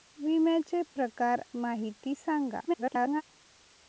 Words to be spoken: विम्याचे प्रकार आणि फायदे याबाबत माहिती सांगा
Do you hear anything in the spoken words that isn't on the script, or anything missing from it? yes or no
yes